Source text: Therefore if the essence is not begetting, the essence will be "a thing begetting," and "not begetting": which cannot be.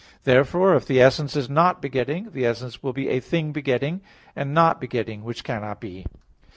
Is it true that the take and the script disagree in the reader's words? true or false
false